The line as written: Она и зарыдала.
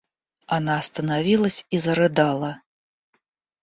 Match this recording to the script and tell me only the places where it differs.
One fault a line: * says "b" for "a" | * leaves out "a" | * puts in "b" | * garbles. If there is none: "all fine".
* puts in "остановилась"